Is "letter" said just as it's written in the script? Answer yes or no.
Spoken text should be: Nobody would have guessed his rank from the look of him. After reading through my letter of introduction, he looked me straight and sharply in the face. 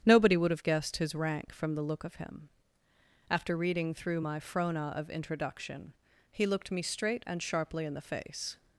no